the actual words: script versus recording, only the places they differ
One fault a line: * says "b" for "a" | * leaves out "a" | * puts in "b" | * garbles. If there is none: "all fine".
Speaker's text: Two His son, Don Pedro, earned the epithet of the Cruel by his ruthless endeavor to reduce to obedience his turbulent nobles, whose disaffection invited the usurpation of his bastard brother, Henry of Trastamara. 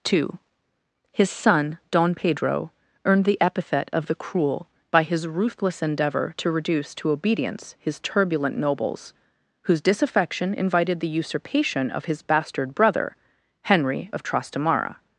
all fine